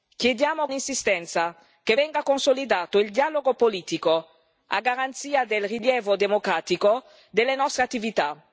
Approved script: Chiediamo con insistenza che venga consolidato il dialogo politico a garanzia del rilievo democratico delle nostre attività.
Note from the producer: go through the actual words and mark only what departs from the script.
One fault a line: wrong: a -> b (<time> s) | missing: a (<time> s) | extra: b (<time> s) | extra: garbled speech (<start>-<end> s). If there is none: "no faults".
missing: con (0.7 s)